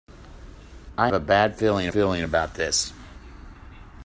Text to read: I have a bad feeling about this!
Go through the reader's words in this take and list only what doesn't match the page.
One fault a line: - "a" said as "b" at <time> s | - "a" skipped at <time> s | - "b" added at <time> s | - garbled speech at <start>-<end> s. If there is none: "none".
- "have" skipped at 1.1 s
- "feeling" added at 1.9 s